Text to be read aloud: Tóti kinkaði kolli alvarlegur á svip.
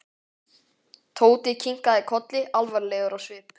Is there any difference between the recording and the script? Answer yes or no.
no